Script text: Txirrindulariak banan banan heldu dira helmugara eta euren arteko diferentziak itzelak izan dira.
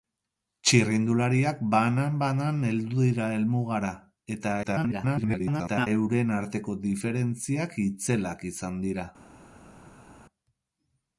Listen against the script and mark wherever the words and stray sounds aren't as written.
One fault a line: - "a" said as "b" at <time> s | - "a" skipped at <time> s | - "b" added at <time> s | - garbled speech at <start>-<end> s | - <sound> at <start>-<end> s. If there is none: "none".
- garbled speech at 4.6-5.9 s